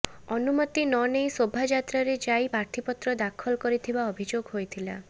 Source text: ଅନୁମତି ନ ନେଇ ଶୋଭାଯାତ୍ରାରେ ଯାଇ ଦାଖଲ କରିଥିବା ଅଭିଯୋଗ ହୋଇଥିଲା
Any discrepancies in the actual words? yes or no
yes